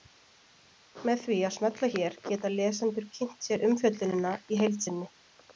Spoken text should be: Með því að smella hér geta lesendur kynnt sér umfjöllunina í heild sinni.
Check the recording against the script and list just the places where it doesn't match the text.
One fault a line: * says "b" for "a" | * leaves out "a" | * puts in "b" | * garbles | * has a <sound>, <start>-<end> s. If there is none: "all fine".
all fine